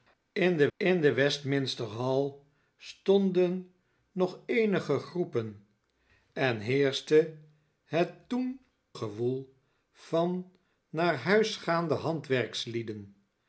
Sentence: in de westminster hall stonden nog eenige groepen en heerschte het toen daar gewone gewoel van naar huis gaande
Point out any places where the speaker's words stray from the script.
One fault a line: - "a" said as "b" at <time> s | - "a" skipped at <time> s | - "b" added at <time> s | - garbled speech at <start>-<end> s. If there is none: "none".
- "in de" added at 0.8 s
- "daar gewone" skipped at 8.6 s